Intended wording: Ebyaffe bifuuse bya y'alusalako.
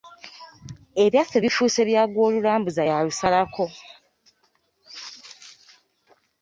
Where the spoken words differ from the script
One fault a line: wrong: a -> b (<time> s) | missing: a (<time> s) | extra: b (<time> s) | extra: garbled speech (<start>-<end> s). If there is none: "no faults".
extra: gw'olulambuza (2.1 s)